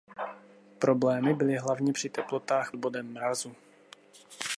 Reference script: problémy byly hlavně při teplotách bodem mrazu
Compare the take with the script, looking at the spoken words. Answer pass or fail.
pass